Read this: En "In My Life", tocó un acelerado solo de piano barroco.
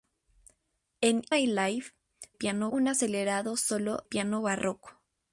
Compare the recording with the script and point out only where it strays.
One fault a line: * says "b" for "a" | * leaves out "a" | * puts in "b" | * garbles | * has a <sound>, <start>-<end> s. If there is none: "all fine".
* leaves out "In"
* says "piano" for "tocó"
* leaves out "de"